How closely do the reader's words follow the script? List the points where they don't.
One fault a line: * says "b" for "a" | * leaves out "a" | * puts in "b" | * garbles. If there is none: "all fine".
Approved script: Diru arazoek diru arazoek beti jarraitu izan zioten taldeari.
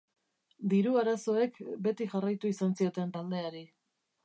* leaves out "diru arazoek"